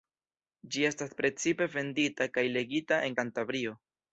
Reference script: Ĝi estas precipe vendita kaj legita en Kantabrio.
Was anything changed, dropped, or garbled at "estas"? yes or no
no